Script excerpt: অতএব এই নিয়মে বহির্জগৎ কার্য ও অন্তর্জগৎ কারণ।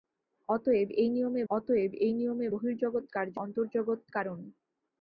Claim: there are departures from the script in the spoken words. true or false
true